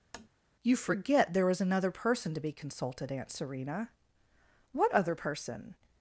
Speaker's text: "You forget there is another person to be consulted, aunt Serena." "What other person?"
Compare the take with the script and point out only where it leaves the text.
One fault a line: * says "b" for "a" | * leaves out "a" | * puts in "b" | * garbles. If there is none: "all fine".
all fine